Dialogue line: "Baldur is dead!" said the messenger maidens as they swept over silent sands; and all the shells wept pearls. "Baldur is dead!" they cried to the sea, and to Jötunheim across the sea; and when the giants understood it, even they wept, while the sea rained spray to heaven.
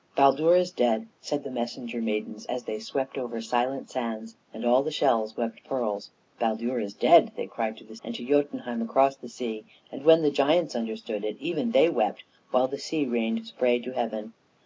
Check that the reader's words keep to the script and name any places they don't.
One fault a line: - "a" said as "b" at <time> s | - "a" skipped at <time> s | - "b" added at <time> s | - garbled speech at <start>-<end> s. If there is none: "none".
- "sea" skipped at 8.0 s